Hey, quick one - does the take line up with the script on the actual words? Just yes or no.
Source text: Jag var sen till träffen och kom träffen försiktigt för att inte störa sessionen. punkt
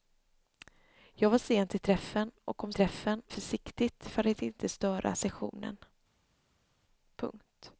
yes